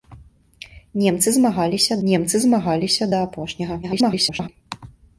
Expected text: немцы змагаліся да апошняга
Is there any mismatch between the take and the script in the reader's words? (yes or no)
yes